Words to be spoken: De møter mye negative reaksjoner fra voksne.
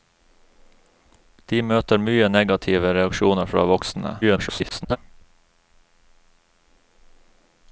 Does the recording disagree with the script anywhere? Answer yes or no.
yes